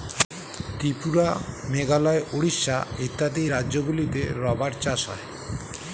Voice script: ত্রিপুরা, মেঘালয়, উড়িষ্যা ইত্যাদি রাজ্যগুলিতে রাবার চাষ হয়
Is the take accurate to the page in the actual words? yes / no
yes